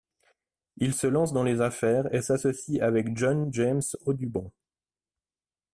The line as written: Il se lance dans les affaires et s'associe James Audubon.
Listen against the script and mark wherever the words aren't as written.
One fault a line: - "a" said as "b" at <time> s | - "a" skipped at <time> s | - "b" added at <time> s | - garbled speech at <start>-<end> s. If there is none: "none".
- "avec John" added at 2.8 s